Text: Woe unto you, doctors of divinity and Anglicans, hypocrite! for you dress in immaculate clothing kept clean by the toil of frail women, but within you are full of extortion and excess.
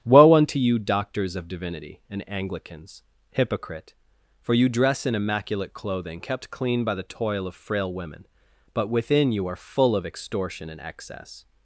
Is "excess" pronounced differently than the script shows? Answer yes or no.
no